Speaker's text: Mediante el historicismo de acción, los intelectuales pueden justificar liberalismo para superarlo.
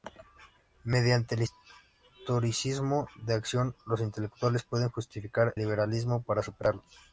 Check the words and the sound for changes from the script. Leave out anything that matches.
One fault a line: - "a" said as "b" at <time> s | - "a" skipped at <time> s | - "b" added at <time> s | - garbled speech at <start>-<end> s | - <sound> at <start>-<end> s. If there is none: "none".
none